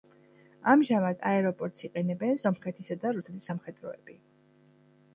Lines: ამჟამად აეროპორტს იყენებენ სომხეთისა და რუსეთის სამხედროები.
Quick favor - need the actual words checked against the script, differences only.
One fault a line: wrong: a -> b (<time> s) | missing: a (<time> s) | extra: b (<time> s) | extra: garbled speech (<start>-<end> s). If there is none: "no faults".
no faults